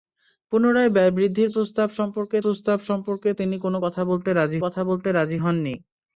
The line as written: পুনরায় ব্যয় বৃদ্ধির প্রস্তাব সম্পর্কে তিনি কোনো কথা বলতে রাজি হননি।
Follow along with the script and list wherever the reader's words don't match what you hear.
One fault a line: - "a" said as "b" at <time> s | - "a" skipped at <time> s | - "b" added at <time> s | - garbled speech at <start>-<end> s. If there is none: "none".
- "প্রস্তাব সম্পর্কে" added at 2.4 s
- "কথা বলতে রাজি" added at 4.6 s